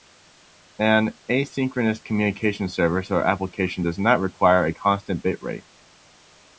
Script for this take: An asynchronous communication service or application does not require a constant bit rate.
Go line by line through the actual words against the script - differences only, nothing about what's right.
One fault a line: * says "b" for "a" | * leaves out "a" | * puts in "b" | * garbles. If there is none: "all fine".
all fine